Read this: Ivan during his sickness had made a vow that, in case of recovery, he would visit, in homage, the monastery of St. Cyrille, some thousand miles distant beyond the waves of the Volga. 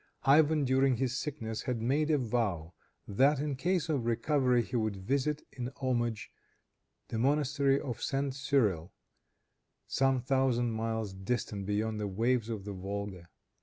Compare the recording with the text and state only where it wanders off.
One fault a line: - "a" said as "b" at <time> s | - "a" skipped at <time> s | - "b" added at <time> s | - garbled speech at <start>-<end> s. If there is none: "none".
none